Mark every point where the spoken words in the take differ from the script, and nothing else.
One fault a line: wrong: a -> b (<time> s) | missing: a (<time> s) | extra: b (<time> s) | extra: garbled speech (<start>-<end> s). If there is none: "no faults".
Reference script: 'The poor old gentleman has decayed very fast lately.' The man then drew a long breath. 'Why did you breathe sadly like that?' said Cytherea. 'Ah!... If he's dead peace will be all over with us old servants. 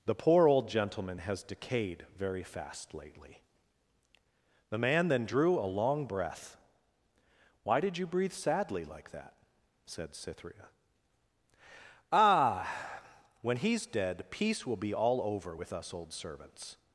wrong: If -> When (13.4 s)